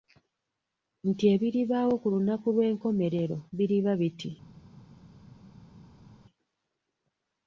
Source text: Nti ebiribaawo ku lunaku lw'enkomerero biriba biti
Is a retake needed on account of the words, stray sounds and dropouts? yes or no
no